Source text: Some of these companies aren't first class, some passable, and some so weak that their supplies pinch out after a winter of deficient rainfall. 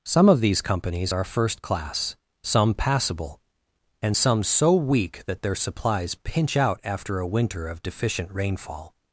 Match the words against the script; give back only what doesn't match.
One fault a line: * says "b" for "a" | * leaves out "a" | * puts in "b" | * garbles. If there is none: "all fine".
* says "are" for "aren't"